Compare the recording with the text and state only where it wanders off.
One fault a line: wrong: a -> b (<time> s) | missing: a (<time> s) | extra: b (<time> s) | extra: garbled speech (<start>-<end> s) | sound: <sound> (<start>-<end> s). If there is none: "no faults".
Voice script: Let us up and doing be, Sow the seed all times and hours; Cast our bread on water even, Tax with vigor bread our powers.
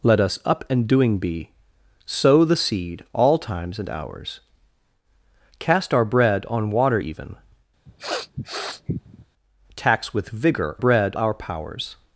sound: sniff (7.9-9.3 s)